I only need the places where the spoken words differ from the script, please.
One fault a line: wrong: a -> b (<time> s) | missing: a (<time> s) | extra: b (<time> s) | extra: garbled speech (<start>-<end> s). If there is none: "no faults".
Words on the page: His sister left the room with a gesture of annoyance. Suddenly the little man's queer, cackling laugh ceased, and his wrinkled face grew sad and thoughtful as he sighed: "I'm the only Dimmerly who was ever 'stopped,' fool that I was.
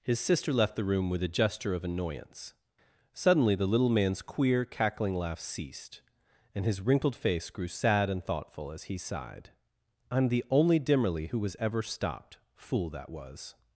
missing: I (13.1 s)